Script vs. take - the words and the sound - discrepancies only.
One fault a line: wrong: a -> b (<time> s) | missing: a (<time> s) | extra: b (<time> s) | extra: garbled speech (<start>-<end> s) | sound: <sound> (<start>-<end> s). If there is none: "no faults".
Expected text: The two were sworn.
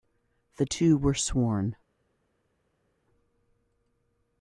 no faults